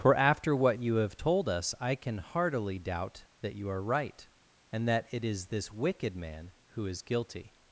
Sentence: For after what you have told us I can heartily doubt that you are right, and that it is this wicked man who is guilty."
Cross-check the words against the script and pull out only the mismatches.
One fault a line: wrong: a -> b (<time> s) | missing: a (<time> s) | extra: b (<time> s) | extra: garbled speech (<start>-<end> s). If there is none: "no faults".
no faults